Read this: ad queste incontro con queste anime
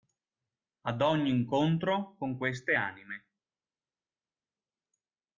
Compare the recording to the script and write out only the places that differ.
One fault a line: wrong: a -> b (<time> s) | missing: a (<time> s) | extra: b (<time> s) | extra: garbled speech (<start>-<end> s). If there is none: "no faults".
wrong: queste -> ogni (1.0 s)